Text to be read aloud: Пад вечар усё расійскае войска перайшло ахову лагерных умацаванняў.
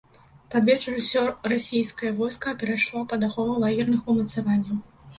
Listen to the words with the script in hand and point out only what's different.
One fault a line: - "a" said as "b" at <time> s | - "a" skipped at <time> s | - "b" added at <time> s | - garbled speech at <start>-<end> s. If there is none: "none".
- "пад" added at 3.1 s